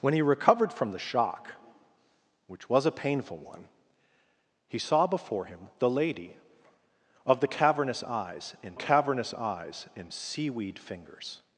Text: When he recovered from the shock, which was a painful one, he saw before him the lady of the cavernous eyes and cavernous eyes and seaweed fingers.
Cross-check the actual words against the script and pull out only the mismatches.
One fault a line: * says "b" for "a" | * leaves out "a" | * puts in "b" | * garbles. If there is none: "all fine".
all fine